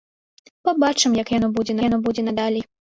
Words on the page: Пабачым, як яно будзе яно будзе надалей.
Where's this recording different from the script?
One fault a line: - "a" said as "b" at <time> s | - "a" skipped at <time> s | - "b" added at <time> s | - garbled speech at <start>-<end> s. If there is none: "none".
none